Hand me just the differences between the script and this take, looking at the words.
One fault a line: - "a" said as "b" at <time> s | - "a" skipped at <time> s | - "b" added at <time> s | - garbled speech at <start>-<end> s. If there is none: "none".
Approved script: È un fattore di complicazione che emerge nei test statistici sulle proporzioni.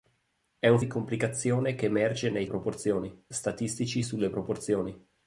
- "fattore" skipped at 0.8 s
- "test" said as "proporzioni" at 2.5 s